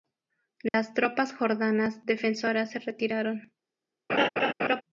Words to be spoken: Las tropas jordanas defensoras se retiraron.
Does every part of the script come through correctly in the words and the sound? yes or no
no